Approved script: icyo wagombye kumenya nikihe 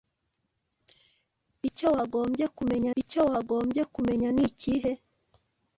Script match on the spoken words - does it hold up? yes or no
no